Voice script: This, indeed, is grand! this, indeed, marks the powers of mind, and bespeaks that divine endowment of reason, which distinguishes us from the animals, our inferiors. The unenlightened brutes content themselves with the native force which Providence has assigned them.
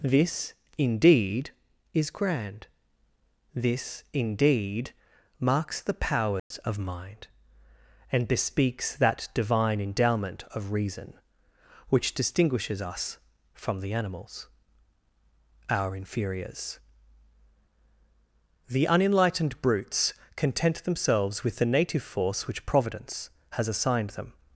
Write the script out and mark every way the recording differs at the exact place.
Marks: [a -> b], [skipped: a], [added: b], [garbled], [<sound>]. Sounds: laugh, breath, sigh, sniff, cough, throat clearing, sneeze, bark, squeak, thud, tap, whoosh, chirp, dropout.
This, indeed, is grand! this, indeed, marks the powers [dropout] of mind, and bespeaks that divine endowment of reason, which distinguishes us from the animals, our inferiors. The unenlightened brutes content themselves with the native force which Providence has assigned them.